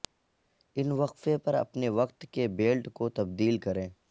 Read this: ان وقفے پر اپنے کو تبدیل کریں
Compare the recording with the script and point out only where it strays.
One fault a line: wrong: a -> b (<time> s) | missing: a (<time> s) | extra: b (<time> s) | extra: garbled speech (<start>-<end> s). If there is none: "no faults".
extra: وقت کے بیلٹ (1.9 s)